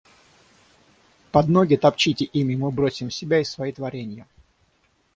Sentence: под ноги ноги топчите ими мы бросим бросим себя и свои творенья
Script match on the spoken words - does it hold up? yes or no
no